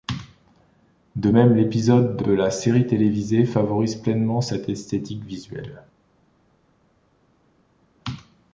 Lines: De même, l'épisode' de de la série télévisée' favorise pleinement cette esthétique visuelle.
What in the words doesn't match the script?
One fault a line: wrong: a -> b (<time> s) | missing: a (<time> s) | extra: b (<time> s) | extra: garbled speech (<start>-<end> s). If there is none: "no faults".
no faults